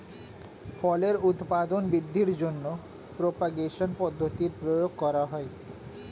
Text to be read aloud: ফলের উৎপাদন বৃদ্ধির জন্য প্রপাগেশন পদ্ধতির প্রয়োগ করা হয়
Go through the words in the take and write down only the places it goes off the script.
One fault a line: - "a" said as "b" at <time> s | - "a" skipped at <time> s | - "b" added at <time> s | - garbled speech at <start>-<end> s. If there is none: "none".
none